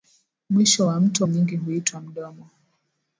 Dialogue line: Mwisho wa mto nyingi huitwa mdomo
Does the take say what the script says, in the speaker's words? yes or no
yes